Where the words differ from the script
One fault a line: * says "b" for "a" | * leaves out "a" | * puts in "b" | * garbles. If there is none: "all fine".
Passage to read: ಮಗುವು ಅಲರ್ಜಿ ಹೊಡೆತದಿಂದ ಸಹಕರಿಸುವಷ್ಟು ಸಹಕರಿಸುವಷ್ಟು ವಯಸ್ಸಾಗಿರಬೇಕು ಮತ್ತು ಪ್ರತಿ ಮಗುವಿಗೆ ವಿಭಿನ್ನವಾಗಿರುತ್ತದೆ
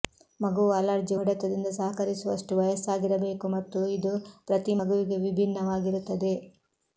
* leaves out "ಸಹಕರಿಸುವಷ್ಟು"
* puts in "ಇದು"